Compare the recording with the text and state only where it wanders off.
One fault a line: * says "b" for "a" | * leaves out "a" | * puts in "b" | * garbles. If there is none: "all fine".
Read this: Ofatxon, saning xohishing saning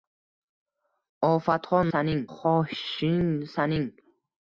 all fine